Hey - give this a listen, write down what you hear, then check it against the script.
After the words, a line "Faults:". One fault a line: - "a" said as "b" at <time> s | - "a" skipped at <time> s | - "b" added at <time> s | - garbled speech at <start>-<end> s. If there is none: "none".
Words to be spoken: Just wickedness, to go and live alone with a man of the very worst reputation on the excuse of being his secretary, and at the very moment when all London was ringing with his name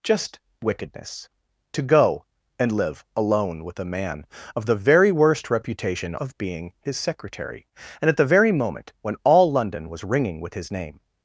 Just wickedness, to go and live alone with a man of the very worst reputation of being his secretary, and at the very moment when all London was ringing with his name
Faults:
- "on the excuse" skipped at 6.2 s